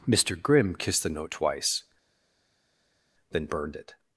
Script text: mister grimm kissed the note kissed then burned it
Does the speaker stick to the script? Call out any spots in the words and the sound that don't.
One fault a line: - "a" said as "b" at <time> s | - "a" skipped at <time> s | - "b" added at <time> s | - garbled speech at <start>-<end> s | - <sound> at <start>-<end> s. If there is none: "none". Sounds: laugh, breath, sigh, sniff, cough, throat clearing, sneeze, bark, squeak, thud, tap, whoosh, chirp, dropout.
- "kissed" said as "twice" at 1.3 s